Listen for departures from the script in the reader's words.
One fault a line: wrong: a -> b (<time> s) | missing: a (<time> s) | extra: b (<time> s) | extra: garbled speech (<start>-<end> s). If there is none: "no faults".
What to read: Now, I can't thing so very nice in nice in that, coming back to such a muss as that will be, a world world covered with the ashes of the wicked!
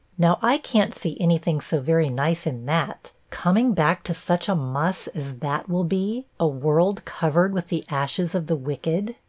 extra: see any (0.9 s)
missing: nice in (2.6 s)
missing: world (7.0 s)